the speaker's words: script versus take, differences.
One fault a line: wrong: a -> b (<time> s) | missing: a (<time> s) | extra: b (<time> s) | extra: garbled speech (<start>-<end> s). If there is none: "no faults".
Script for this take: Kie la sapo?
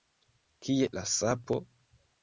no faults